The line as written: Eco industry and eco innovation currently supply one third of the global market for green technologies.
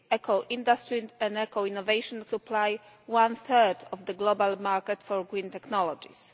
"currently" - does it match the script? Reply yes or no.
no